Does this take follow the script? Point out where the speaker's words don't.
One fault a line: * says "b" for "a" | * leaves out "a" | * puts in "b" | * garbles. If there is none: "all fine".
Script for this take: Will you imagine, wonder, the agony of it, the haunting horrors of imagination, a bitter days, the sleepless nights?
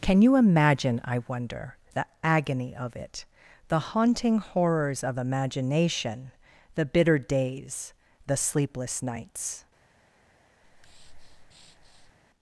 * says "Can" for "Will"
* puts in "I"
* says "the" for "a"